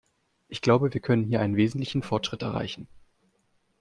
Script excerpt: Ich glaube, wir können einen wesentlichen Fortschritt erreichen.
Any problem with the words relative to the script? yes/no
yes